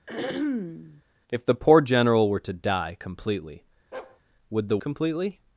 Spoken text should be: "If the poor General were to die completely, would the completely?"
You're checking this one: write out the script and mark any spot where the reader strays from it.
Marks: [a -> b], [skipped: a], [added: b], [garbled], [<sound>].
[throat clearing] "If the poor General were to die completely, [bark] would the completely?"